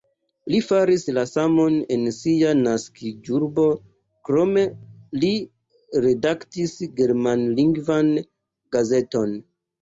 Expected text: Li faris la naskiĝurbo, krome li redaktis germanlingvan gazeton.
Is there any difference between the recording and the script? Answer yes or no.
yes